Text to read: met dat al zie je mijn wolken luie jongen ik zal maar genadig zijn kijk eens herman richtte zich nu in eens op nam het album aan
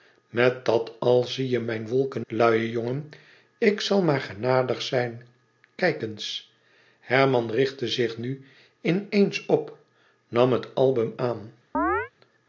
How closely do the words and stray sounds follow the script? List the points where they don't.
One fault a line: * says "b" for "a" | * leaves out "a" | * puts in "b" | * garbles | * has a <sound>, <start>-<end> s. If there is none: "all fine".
* has a chirp, 11.7-12.1 s